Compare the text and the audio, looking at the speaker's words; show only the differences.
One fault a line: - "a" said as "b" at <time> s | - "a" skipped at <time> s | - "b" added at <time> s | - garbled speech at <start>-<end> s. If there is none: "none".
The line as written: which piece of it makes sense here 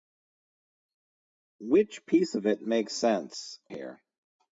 none